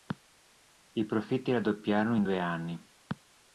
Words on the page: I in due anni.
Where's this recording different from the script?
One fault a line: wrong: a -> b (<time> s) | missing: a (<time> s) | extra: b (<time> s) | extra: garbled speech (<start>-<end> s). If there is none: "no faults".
extra: profitti raddoppiarono (1.1 s)